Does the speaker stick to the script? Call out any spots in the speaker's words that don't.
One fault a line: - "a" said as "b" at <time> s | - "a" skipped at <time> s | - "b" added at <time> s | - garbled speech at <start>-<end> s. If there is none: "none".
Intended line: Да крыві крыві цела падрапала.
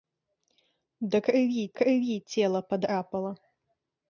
none